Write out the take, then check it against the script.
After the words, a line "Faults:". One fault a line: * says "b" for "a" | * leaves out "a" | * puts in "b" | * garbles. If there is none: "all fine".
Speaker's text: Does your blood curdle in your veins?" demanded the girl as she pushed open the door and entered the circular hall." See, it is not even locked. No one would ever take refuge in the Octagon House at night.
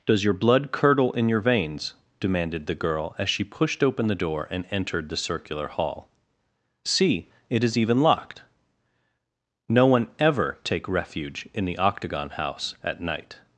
Does your blood curdle in your veins?" demanded the girl as she pushed open the door and entered the circular hall." See, it is even locked. No one ever take refuge in the Octagon House at night.
Faults:
* leaves out "not"
* leaves out "would"